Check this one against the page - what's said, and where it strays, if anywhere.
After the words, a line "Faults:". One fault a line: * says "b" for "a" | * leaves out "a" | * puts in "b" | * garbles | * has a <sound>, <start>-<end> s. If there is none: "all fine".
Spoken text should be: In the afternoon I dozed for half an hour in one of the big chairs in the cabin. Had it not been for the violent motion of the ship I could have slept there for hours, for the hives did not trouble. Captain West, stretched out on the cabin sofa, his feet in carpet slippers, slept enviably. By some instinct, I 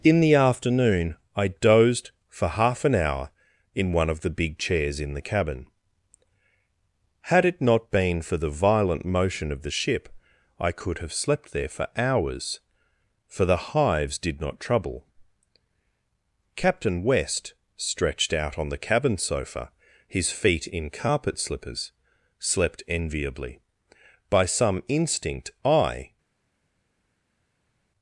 In the afternoon I dozed for half an hour in one of the big chairs in the cabin. Had it not been for the violent motion of the ship I could have slept there for hours, for the hives did not trouble. Captain West, stretched out on the cabin sofa, his feet in carpet slippers, slept enviably. By some instinct, I
Faults:
all fine